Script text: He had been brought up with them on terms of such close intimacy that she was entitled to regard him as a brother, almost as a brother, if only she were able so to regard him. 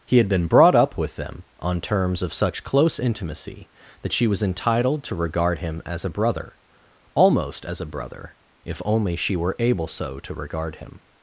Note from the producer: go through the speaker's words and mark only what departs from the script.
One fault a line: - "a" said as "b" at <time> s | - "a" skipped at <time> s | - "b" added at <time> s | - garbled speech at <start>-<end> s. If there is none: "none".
none